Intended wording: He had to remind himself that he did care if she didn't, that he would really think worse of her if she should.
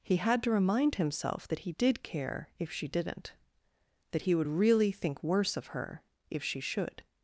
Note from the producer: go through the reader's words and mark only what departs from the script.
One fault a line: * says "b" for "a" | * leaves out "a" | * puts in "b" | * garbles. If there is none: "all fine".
all fine